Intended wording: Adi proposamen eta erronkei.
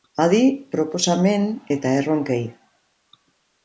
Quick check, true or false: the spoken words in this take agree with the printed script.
true